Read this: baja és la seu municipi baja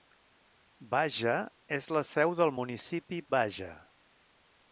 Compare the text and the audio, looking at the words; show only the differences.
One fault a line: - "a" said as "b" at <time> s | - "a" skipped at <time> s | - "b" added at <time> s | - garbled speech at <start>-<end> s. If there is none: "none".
- "del" added at 2.4 s